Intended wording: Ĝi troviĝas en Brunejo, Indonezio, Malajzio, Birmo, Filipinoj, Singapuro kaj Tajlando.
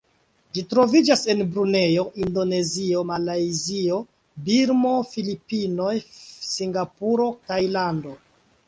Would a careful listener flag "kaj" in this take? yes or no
yes